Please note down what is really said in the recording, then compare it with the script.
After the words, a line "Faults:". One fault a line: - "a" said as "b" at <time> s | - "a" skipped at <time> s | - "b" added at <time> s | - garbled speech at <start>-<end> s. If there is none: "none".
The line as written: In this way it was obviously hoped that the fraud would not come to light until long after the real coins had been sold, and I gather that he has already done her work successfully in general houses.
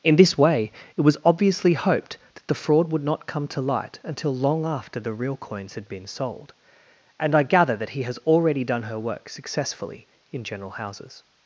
In this way it was obviously hoped that the fraud would not come to light until long after the real coins had been sold, and I gather that he has already done her work successfully in general houses.
Faults:
none